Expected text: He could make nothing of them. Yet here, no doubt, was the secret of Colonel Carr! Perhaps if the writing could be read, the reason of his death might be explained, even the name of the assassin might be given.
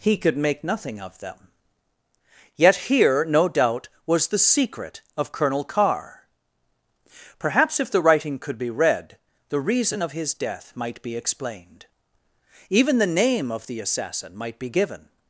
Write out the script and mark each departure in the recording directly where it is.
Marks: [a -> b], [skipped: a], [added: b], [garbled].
He could make nothing of them. Yet here, no doubt, was the secret of Colonel Carr! Perhaps if the writing could be read, the reason of his death might be explained, even the name of the assassin might be given.